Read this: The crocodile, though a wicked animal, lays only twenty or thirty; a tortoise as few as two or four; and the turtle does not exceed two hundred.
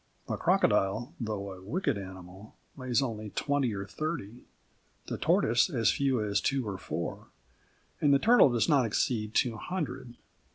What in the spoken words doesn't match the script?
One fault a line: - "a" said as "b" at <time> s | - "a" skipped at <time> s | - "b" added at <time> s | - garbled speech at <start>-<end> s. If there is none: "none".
- "a" said as "the" at 5.0 s